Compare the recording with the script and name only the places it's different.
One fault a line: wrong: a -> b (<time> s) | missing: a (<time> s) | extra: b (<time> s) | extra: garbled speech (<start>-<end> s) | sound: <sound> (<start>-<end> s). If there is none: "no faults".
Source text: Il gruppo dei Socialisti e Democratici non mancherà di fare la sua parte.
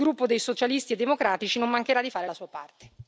no faults